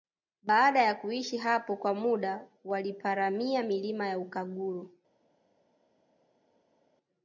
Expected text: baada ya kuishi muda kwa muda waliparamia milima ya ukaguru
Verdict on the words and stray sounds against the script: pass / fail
fail